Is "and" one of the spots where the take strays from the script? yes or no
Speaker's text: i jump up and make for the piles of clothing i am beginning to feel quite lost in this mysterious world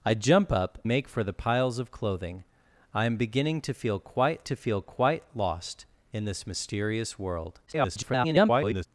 yes